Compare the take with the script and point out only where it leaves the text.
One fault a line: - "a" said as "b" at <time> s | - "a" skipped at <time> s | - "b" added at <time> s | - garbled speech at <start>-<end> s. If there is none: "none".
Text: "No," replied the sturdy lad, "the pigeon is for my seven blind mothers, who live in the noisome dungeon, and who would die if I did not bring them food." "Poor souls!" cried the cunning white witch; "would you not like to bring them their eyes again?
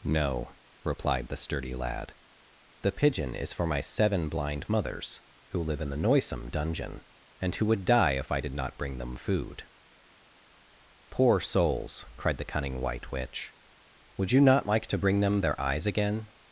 none